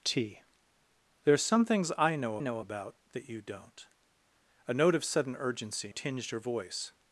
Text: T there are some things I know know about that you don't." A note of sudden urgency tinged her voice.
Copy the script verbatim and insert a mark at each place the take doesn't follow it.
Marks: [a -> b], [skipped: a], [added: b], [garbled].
T there are some things I know know about that you don't." A note of sudden urgency tinged her voice.